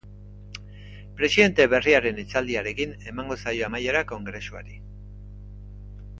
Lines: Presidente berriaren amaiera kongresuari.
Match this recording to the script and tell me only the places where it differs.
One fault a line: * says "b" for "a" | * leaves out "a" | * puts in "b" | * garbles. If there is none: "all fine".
* puts in "hitzaldiarekin emango zaio"